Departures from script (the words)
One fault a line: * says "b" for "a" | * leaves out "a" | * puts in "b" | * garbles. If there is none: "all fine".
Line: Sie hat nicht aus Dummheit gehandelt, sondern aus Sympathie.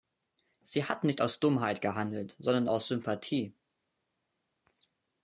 all fine